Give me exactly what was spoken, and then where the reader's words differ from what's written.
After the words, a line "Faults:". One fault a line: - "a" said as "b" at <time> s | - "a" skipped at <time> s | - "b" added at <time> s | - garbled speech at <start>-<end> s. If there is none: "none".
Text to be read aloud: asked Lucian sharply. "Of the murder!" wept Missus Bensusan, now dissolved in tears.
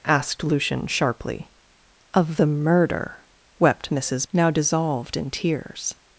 asked Lucian sharply. "Of the murder!" wept Missus Now dissolved in tears.
Faults:
- "Bensusan" skipped at 4.2 s